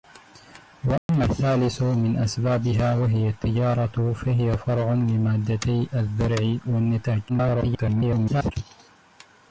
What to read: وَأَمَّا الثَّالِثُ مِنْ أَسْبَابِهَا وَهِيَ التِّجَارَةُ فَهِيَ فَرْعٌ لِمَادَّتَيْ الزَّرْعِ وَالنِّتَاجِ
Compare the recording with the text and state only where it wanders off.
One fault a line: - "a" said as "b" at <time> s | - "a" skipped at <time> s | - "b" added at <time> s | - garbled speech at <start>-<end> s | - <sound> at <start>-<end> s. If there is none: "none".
- dropout at 1.0-1.1 s
- garbled speech at 7.3-8.5 s